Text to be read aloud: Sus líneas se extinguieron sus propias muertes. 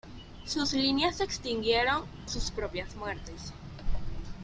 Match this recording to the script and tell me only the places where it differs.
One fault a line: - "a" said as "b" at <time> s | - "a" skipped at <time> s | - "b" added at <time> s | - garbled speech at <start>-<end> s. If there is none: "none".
none